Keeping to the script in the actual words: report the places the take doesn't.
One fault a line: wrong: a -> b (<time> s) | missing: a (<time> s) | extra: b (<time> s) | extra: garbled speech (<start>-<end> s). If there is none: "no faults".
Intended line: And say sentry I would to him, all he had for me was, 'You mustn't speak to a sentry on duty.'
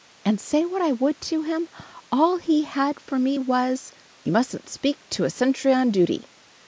wrong: sentry -> what (0.7 s)